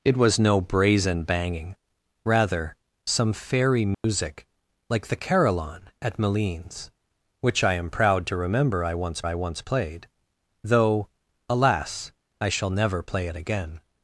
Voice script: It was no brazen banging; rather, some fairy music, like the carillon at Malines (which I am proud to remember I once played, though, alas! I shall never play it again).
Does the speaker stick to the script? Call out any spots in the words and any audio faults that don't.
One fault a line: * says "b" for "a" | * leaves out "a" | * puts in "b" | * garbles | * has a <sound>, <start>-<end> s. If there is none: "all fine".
* has a dropout, 3.9-4.0 s
* puts in "I once"